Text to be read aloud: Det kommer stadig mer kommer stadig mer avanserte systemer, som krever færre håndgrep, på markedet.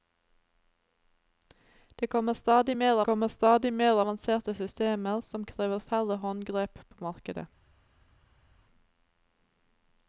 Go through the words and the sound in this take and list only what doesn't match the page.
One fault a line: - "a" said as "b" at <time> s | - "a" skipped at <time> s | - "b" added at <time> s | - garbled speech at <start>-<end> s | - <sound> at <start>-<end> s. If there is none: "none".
none